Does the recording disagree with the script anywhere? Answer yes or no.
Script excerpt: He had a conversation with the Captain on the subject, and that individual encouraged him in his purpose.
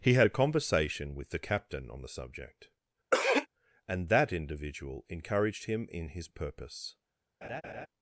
no